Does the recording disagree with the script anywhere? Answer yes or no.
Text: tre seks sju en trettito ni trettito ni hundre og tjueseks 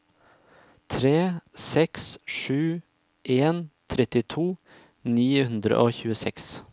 yes